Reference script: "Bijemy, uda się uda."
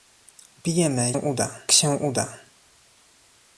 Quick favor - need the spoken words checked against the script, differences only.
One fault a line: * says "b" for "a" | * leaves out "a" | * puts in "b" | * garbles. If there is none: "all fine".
all fine